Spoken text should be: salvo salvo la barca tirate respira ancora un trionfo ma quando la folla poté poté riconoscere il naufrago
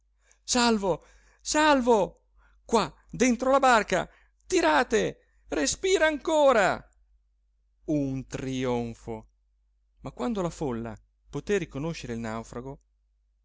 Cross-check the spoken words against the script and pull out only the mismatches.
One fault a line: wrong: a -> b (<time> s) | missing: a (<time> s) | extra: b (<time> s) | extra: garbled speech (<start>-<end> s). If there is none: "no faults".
extra: qua dentro (2.6 s)
missing: poté (11.6 s)